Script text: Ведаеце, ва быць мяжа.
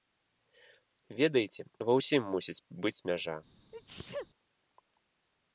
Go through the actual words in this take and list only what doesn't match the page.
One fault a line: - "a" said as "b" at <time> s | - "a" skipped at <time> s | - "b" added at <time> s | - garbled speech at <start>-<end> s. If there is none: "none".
- "ўсім мусіць" added at 2.0 s